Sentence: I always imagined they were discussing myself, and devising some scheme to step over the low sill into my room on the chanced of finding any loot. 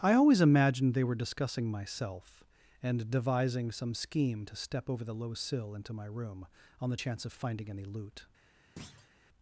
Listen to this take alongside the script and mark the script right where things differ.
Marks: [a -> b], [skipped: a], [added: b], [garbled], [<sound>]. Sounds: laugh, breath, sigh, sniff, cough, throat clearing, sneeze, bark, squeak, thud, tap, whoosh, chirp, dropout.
I always imagined they were discussing myself, and devising some scheme to step over the low sill into my room on the [chanced -> chance] of finding any loot. [thud]